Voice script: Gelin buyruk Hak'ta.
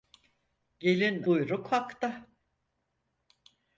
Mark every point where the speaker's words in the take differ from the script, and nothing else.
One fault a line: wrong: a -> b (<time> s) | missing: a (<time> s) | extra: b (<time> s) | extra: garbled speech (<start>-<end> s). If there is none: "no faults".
no faults